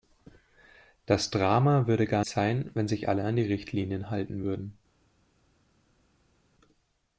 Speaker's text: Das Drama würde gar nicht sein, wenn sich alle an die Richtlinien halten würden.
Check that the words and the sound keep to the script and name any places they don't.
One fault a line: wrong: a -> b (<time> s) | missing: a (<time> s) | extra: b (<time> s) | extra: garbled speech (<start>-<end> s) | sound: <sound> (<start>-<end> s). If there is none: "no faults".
missing: nicht (2.2 s)